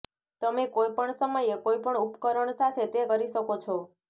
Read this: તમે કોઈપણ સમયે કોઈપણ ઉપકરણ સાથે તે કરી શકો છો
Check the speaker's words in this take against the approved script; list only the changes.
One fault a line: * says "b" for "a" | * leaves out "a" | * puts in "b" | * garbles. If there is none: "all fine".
all fine